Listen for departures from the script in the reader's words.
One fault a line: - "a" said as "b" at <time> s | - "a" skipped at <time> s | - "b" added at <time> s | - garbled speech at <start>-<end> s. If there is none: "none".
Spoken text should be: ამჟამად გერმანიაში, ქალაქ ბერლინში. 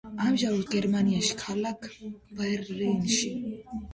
none